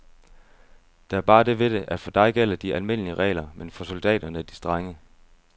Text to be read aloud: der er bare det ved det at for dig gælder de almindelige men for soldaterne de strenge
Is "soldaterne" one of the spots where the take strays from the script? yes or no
no